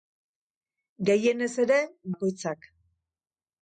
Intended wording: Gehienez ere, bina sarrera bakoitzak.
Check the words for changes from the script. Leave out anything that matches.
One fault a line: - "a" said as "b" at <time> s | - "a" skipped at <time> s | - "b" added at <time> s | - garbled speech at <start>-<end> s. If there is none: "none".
- "bina sarrera" skipped at 1.8 s